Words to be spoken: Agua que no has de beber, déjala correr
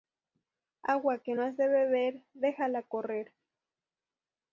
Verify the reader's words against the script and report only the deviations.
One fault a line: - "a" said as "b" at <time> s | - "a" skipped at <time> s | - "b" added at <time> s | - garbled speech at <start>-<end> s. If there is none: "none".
none